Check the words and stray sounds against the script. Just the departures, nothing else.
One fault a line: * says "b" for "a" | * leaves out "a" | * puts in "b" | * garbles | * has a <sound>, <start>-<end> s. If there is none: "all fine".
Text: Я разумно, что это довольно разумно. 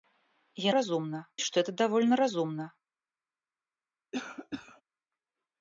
* has a cough, 4.1-4.8 s